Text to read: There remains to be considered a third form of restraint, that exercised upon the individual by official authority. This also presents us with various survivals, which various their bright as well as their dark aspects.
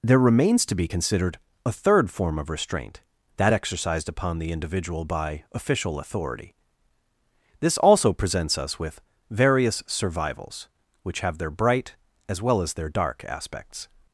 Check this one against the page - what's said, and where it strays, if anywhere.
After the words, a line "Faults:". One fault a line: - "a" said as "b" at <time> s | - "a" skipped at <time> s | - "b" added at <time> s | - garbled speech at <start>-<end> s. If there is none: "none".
There remains to be considered a third form of restraint, that exercised upon the individual by official authority. This also presents us with various survivals, which have their bright as well as their dark aspects.
Faults:
- "various" said as "have" at 11.2 s